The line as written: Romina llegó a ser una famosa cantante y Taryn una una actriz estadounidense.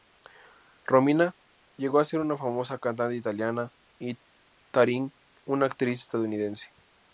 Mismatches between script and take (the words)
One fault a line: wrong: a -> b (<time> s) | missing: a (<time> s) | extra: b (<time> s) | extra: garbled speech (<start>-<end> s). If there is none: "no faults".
extra: italiana (3.1 s)
missing: una (5.7 s)